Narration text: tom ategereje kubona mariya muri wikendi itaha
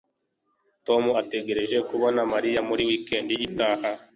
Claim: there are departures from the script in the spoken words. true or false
false